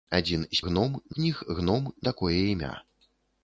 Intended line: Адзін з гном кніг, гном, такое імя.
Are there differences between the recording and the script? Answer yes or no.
no